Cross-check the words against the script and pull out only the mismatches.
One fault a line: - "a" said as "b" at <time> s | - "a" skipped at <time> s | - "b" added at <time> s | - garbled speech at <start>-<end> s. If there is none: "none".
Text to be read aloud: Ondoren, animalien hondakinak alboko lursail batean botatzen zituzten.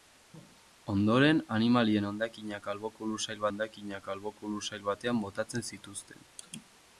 - "hondakinak alboko lursail" added at 3.5 s